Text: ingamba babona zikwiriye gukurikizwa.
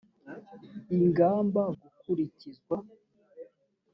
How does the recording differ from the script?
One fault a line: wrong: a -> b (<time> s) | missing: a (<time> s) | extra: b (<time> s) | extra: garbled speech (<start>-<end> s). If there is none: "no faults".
missing: babona zikwiriye (1.6 s)